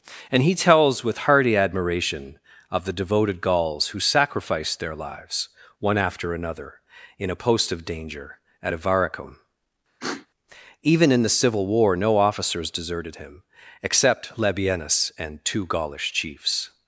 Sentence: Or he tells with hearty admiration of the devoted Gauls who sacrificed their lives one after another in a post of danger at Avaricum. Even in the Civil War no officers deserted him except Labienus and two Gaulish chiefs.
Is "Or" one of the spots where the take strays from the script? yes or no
yes